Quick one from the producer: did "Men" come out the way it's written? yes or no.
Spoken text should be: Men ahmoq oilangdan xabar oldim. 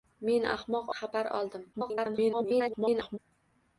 yes